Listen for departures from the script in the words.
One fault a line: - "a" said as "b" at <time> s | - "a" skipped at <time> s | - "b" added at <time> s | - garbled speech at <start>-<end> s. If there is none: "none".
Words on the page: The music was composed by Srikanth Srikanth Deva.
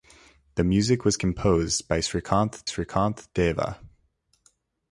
none